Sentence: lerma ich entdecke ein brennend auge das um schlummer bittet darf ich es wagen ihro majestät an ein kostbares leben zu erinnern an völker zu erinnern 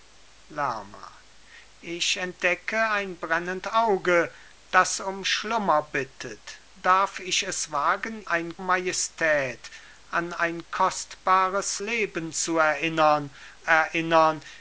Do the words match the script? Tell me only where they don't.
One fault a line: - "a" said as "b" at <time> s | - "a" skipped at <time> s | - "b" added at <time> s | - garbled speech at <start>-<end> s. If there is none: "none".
- "ihro" said as "ein" at 8.2 s
- "an völker zu" skipped at 13.3 s